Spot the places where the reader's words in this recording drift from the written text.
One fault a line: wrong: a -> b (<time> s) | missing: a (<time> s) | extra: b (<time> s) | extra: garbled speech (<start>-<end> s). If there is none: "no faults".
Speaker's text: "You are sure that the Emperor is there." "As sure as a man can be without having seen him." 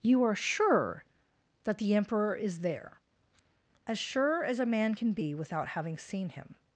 no faults